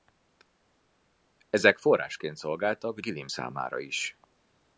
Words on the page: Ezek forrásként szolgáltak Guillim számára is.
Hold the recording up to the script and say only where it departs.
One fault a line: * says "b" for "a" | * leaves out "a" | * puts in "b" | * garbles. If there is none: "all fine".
all fine